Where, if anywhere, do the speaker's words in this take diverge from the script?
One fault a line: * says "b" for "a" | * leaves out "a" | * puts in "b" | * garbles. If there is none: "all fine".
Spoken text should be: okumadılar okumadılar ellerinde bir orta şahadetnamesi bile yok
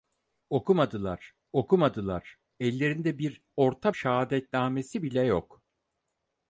all fine